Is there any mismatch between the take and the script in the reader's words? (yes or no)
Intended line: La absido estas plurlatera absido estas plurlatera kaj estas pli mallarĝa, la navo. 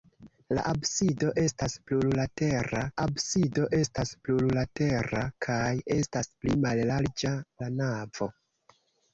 no